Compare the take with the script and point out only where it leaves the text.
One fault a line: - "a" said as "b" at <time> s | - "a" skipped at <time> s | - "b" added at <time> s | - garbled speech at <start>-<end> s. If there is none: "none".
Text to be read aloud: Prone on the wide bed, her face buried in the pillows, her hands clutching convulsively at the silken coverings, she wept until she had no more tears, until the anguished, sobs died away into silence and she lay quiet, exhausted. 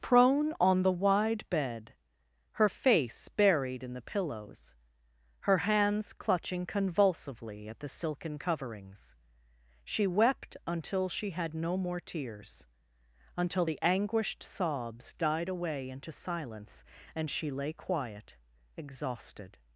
none